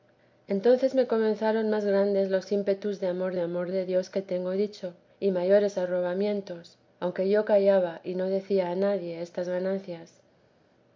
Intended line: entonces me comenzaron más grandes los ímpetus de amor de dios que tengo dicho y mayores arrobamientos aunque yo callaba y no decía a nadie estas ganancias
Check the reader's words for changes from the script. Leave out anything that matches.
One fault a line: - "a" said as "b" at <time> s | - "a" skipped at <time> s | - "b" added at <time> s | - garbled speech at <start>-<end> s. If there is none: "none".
- "amor" added at 3.4 s